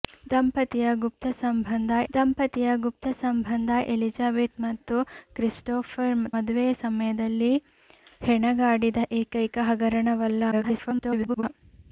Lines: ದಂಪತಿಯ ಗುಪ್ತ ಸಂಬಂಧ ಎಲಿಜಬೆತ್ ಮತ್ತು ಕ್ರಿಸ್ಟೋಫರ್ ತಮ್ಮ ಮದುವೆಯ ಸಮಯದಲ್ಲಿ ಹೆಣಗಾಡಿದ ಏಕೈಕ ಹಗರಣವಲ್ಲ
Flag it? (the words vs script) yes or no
yes